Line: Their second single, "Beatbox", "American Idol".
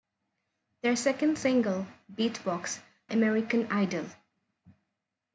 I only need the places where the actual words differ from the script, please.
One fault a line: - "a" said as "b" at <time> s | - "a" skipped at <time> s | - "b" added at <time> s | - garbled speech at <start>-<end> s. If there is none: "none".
none